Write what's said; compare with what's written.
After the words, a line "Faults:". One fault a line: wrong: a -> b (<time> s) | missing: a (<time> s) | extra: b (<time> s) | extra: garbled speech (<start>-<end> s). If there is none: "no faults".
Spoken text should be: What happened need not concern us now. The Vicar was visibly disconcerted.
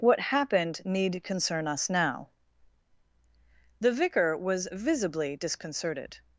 What happened need concern us now. The Vicar was visibly disconcerted.
Faults:
missing: not (1.2 s)